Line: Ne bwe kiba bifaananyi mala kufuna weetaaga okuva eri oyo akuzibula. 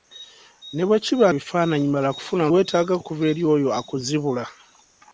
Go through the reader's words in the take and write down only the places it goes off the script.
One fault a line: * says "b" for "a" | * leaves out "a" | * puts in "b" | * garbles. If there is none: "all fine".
all fine